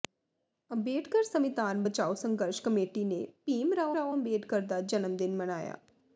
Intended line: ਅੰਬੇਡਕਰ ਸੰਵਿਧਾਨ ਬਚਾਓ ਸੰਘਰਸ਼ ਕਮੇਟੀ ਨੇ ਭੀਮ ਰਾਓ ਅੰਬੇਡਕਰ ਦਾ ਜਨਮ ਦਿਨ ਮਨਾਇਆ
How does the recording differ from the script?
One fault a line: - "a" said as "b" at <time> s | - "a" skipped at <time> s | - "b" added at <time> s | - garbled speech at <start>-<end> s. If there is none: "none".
- "ਰਾਓ" added at 3.9 s